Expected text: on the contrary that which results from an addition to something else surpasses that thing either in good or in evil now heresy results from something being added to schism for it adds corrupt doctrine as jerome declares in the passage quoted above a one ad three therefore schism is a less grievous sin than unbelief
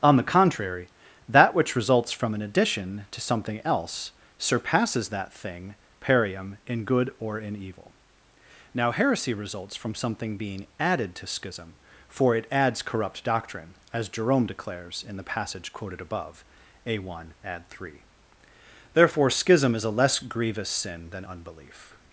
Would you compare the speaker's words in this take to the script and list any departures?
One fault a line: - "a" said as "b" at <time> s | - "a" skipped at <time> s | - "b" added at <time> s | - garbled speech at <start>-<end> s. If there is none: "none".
- "either" said as "perium" at 6.0 s